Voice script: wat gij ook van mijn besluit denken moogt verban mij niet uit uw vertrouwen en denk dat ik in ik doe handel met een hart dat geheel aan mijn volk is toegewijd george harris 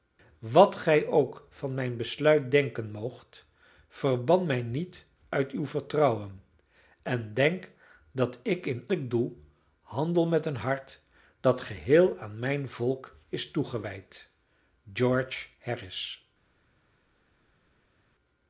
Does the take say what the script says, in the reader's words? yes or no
yes